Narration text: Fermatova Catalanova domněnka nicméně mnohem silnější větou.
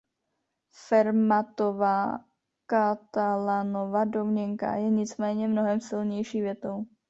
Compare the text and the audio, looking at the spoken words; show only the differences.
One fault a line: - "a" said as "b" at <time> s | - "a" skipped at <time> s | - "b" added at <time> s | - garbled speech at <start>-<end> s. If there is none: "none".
- "je" added at 4.7 s